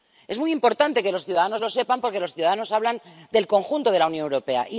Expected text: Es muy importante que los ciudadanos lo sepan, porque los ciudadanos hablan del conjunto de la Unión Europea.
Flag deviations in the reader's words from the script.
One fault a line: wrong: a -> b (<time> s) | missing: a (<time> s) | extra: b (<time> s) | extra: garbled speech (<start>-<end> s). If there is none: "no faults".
no faults